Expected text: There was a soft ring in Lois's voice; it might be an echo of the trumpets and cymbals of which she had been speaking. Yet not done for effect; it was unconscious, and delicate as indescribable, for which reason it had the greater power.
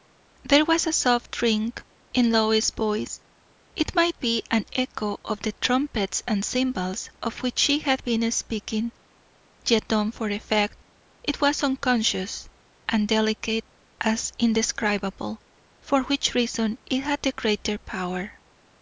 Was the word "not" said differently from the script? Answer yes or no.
yes